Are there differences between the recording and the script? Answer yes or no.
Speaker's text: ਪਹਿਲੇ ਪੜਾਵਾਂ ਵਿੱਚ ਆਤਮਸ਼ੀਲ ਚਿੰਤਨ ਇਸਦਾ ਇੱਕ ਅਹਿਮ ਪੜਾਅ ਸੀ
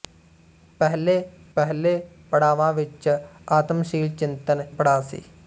yes